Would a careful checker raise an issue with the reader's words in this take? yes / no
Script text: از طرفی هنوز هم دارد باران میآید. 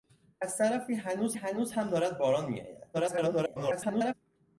yes